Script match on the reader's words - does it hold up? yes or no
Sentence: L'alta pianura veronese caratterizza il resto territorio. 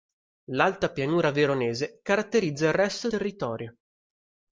yes